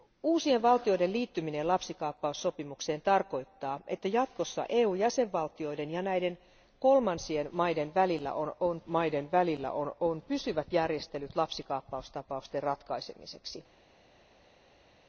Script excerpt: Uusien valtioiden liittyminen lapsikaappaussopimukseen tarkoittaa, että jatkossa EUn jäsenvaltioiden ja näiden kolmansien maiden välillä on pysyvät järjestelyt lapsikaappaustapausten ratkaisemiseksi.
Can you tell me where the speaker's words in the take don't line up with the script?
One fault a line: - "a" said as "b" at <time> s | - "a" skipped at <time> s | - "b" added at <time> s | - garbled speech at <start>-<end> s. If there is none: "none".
- "maiden välillä on" added at 8.9 s